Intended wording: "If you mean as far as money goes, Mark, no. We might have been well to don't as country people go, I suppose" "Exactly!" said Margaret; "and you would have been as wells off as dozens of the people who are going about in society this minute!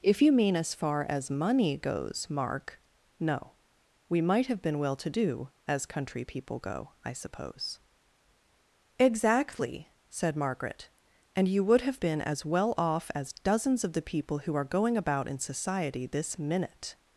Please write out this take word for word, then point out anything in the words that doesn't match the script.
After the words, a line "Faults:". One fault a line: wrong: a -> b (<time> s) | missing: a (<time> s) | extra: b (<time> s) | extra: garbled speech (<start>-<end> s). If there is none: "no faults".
"If you mean as far as money goes, Mark, no. We might have been well to do as country people go, I suppose" "Exactly!" said Margaret; "and you would have been as well off as dozens of the people who are going about in society this minute!
Faults:
wrong: don't -> do (5.1 s)
wrong: wells -> well (12.5 s)